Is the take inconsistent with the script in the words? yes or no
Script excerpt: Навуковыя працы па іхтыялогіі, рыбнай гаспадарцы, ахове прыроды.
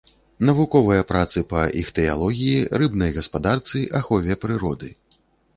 no